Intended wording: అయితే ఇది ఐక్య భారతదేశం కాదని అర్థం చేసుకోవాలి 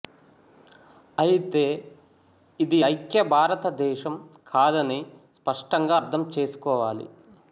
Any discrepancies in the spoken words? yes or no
yes